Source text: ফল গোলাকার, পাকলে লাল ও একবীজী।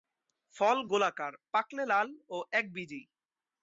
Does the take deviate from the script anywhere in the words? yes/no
no